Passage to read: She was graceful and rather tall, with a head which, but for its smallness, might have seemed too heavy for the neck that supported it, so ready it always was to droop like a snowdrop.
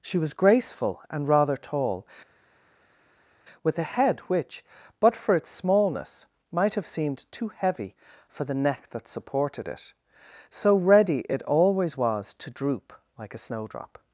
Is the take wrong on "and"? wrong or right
right